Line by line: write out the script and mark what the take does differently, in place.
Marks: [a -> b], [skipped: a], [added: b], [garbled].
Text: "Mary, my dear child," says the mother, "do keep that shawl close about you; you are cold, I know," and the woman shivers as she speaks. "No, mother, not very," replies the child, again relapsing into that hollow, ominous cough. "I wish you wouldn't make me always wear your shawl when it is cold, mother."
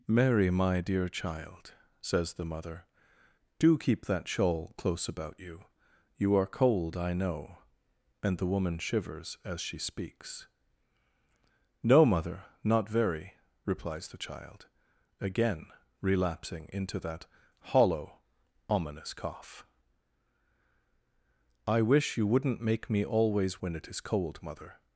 "Mary, my dear child," says the mother, "do keep that shawl close about you; you are cold, I know," and the woman shivers as she speaks. "No, mother, not very," replies the child, again relapsing into that hollow, ominous cough. "I wish you wouldn't make me always [skipped: wear your shawl] when it is cold, mother."